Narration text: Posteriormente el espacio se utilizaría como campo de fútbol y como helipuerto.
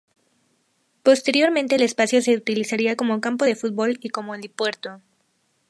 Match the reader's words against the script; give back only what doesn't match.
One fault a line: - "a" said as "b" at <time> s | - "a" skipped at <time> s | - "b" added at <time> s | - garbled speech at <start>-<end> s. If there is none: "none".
none